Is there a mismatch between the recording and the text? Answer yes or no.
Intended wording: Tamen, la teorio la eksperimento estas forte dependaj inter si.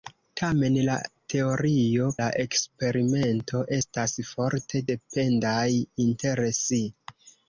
no